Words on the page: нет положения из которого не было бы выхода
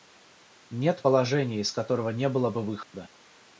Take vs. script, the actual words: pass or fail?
pass